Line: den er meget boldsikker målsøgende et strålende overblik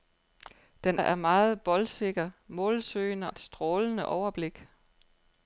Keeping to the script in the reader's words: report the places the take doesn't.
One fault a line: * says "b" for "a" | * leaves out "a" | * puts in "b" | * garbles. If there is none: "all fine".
all fine